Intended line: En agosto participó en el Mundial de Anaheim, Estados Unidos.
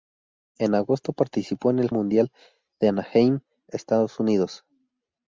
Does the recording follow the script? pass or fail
pass